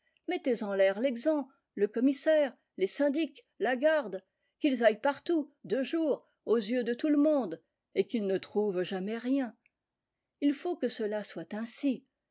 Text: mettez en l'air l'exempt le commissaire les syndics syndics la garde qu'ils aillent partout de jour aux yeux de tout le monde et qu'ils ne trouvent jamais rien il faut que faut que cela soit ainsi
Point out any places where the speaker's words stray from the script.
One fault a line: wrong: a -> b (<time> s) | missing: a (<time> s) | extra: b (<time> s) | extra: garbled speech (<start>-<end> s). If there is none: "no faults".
missing: syndics (3.5 s)
missing: faut que (10.9 s)